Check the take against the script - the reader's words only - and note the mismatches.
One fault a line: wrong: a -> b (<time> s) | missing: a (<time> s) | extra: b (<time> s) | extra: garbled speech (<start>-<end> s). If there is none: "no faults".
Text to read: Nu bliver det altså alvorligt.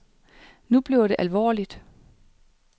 missing: altså (1.1 s)